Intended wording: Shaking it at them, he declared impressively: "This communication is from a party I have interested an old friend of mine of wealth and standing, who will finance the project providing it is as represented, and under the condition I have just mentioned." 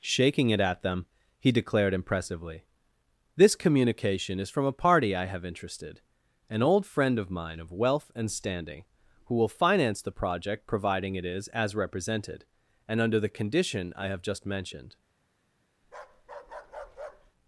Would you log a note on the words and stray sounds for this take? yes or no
yes